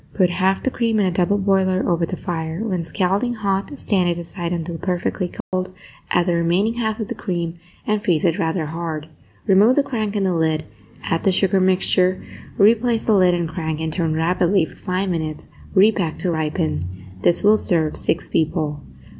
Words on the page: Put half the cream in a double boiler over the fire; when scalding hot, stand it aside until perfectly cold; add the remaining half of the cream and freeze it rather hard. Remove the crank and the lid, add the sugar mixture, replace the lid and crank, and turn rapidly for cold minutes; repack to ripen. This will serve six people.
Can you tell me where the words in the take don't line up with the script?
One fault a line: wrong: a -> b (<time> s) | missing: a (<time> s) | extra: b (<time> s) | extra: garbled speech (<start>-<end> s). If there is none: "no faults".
wrong: cold -> five (14.8 s)